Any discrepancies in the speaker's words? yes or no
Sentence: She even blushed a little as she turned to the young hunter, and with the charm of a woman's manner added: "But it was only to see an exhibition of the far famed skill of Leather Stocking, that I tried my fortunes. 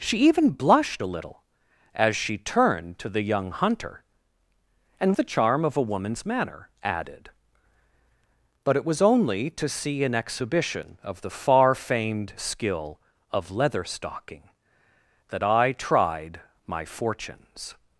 yes